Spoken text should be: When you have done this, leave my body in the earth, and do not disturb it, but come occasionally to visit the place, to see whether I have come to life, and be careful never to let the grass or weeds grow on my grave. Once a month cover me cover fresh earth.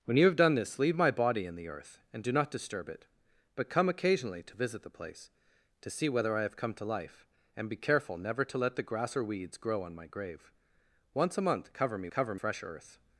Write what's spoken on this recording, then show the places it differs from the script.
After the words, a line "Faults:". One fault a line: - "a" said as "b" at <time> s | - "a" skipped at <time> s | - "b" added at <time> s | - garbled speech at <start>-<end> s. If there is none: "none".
When you have done this, leave my body in the earth, and do not disturb it, but come occasionally to visit the place, to see whether I have come to life, and be careful never to let the grass or weeds grow on my grave. Once a month cover me cover fresh earth.
Faults:
none